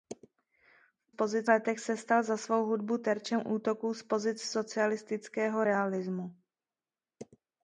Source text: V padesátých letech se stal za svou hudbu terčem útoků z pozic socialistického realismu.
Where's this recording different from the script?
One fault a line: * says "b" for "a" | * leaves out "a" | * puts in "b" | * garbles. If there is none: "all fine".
* says "pozic" for "padesátých"